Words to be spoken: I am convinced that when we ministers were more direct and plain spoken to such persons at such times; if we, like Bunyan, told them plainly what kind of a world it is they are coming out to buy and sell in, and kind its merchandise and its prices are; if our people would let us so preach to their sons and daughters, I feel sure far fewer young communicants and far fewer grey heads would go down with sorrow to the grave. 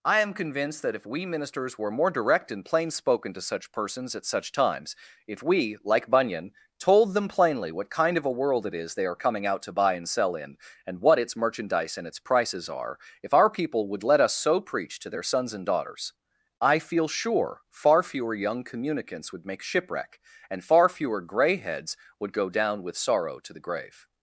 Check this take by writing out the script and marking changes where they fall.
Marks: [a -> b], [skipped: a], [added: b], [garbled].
I am convinced that [when -> if] we ministers were more direct and plain spoken to such persons at such times; if we, like Bunyan, told them plainly what kind of a world it is they are coming out to buy and sell in, and [kind -> what] its merchandise and its prices are; if our people would let us so preach to their sons and daughters, I feel sure far fewer young communicants [added: would make shipwreck] and far fewer grey heads would go down with sorrow to the grave.